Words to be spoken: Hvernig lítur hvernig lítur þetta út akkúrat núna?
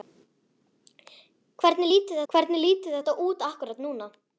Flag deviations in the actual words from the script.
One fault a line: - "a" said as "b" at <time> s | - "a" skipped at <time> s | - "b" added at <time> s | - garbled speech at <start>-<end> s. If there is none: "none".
none